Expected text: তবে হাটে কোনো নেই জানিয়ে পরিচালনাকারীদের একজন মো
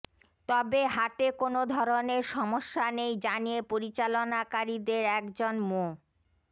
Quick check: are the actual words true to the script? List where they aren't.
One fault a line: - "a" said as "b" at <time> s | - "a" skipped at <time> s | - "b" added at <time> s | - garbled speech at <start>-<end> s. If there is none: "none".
- "ধরনের সমস্যা" added at 1.8 s